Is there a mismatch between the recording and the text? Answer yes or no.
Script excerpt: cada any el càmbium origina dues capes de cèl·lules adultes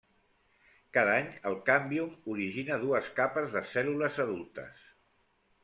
no